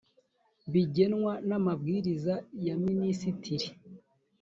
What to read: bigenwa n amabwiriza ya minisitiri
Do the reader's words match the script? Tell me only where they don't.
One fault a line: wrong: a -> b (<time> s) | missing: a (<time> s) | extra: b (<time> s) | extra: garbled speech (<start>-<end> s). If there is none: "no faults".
no faults